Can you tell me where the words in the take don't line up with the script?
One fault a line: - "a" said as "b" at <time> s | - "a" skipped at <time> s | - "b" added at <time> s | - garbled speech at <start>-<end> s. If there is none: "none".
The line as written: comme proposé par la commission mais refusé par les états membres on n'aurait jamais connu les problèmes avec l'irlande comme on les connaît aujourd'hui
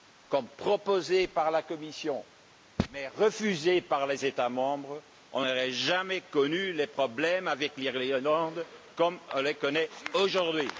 none